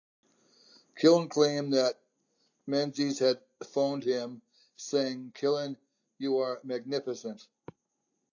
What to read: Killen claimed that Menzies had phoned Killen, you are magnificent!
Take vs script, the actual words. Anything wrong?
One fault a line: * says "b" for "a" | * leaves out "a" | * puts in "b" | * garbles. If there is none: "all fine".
* puts in "him saying"